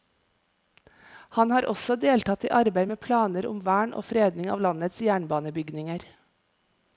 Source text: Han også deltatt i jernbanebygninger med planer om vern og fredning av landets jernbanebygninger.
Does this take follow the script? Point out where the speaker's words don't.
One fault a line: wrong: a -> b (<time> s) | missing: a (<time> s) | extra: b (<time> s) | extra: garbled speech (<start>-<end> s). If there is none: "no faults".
extra: har (1.6 s)
wrong: jernbanebygninger -> arbeid (2.6 s)